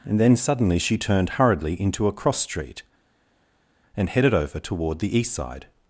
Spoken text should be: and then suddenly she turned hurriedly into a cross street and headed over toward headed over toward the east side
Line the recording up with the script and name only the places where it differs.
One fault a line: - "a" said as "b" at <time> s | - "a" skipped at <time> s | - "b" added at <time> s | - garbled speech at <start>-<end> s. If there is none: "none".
- "headed over toward" skipped at 5.0 s